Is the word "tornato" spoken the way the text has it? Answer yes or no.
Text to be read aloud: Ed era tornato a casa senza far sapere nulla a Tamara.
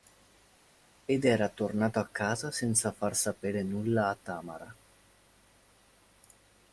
yes